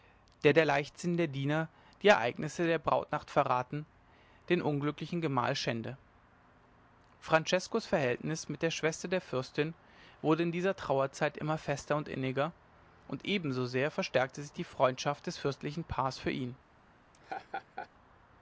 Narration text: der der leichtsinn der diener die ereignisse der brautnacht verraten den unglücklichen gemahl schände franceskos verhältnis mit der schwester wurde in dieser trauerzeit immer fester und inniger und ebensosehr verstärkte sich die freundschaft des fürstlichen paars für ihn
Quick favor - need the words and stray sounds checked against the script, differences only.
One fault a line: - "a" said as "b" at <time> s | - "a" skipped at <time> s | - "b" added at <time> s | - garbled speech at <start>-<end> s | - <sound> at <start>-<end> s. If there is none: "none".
- "der fürstin" added at 9.1 s
- laugh at 17.1-17.9 s